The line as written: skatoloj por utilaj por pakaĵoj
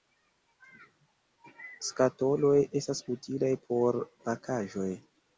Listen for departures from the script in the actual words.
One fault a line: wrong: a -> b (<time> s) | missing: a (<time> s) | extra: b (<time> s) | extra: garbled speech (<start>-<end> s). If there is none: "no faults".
wrong: por -> estas (2.8 s)